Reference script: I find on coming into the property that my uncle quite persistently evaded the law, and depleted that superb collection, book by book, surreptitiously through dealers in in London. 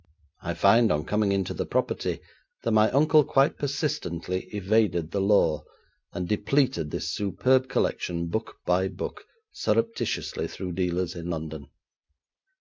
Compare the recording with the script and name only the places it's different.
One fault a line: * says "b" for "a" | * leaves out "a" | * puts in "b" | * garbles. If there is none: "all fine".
* says "this" for "that"
* leaves out "in"